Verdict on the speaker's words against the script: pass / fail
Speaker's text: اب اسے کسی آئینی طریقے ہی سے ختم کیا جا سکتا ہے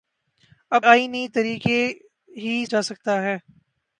fail